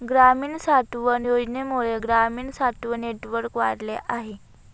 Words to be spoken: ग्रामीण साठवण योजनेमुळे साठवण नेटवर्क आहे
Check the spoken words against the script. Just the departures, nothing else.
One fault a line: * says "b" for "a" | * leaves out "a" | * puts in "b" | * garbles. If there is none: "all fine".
* puts in "ग्रामीण"
* puts in "वाढले"